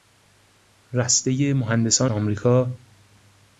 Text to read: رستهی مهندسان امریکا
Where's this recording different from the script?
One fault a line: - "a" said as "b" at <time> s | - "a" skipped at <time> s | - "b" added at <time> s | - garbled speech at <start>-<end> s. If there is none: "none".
none